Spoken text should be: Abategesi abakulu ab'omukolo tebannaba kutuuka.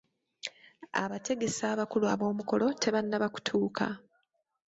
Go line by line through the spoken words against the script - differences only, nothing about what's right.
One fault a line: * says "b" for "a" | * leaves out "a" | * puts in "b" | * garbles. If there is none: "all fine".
all fine